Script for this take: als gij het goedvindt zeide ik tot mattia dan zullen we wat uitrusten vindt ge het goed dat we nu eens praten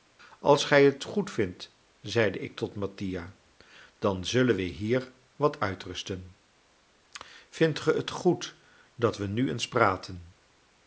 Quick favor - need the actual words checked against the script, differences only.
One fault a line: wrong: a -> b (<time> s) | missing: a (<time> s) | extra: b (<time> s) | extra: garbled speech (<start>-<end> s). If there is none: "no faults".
extra: hier (4.6 s)